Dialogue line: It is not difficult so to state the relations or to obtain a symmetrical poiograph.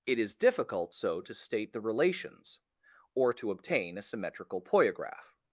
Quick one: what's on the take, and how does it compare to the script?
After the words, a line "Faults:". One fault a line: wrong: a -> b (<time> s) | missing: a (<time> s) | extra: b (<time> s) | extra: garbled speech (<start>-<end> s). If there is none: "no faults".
It is difficult so to state the relations or to obtain a symmetrical poiograph.
Faults:
missing: not (0.3 s)